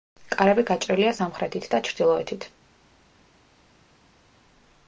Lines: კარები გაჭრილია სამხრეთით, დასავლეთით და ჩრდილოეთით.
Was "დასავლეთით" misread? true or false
true